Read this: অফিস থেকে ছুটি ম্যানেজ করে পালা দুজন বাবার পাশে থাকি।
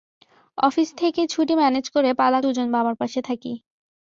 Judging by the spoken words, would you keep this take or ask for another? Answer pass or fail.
pass